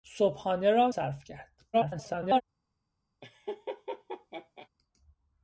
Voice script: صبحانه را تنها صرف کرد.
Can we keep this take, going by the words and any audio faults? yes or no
no